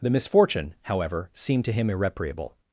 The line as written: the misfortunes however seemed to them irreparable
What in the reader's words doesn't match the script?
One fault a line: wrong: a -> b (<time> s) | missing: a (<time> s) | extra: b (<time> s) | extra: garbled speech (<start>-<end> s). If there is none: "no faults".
wrong: misfortunes -> misfortune (0.1 s)
wrong: them -> him (1.7 s)